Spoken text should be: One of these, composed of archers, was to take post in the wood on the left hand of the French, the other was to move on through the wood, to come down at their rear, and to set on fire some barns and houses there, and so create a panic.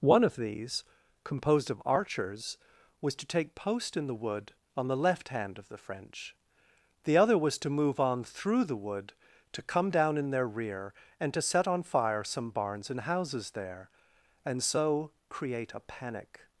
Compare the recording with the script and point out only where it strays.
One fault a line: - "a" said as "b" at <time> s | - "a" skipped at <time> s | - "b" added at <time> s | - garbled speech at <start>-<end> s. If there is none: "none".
- "at" said as "in" at 10.2 s